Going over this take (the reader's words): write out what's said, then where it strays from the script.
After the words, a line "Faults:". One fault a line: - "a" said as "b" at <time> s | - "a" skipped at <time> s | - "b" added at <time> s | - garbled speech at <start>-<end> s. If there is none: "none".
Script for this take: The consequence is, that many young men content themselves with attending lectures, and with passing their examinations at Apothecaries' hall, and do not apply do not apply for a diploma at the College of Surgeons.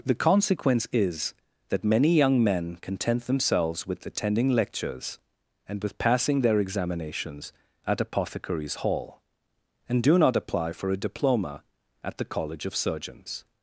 The consequence is, that many young men content themselves with attending lectures, and with passing their examinations at Apothecaries' hall, and do not apply for a diploma at the College of Surgeons.
Faults:
- "do not apply" skipped at 10.7 s